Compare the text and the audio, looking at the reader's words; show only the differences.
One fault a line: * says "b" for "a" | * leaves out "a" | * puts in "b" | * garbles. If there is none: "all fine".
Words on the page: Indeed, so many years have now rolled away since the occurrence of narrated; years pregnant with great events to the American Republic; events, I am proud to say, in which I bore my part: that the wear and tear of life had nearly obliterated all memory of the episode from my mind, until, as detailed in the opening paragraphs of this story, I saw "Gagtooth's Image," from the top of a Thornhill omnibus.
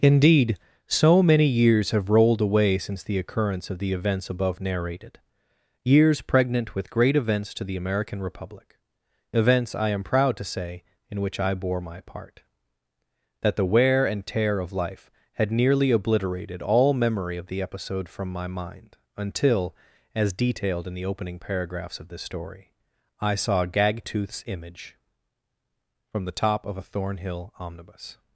* leaves out "now"
* puts in "the events above"